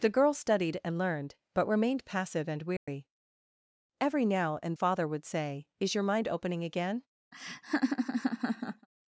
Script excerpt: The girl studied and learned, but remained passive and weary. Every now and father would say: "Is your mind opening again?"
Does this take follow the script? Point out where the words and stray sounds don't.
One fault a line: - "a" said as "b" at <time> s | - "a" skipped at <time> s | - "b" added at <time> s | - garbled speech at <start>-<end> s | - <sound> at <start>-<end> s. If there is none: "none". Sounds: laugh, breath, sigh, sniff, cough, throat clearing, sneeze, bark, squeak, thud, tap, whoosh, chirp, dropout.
- dropout at 2.8-2.9 s
- laugh at 7.3-8.9 s